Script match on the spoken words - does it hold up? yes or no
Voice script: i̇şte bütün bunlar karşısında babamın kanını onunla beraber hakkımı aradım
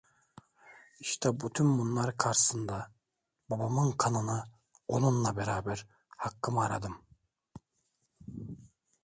yes